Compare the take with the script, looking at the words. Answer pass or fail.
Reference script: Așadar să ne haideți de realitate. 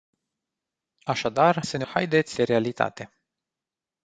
pass